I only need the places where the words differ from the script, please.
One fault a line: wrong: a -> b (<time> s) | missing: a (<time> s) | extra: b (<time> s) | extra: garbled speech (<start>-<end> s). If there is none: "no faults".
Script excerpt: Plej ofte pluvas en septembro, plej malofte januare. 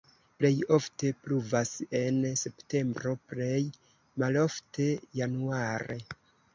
no faults